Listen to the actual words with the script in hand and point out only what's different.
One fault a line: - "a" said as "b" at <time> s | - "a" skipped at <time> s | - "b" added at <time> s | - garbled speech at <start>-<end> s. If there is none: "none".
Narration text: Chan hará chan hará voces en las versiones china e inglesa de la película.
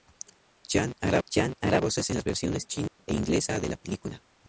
none